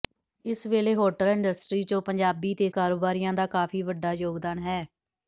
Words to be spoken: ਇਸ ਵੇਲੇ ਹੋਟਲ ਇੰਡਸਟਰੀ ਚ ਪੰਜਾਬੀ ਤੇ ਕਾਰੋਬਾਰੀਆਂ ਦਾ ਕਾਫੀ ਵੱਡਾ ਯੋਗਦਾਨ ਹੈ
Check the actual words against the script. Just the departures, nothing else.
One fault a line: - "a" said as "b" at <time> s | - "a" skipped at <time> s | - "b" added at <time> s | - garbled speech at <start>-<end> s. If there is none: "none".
none